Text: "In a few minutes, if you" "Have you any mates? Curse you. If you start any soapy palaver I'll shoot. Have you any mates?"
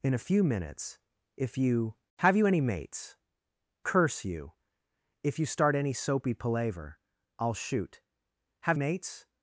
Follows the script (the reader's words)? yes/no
no